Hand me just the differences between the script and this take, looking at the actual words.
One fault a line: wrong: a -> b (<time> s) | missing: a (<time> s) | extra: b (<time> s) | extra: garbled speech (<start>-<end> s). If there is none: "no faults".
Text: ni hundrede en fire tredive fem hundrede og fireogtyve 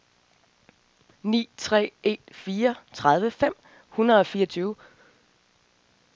wrong: hundrede -> tre (1.6 s)